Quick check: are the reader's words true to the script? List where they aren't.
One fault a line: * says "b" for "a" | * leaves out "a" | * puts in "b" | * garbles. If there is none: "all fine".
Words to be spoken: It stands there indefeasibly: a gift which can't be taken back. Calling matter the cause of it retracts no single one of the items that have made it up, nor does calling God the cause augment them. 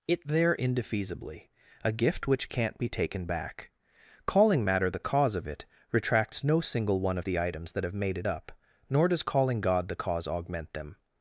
* leaves out "stands"